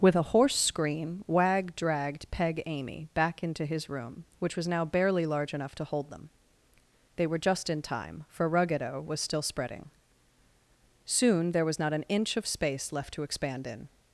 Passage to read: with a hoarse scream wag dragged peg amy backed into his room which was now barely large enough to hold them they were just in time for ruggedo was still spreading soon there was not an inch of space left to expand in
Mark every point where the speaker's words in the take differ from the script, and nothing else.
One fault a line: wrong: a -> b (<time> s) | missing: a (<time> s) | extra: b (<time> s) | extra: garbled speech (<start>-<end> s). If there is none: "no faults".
wrong: backed -> back (3.1 s)